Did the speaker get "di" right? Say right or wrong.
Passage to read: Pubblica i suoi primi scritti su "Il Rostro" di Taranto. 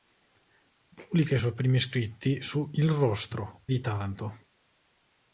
right